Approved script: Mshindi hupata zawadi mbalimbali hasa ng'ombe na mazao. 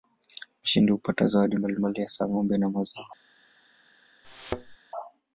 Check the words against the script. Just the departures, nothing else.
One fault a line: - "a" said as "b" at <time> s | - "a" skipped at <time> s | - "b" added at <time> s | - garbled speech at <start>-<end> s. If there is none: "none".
none